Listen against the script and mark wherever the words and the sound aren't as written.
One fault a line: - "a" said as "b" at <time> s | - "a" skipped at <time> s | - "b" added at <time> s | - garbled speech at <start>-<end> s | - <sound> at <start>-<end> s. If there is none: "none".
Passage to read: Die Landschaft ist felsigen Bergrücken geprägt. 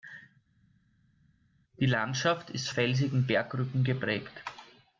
none